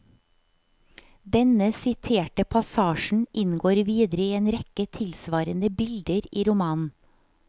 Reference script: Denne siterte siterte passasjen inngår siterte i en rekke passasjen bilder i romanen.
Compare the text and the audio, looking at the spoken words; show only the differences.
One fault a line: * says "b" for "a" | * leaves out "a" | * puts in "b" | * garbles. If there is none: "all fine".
* leaves out "siterte"
* says "videre" for "siterte"
* says "tilsvarende" for "passasjen"